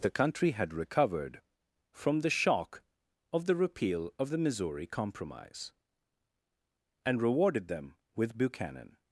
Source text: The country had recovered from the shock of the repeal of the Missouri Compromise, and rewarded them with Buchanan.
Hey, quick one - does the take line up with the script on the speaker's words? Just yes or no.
yes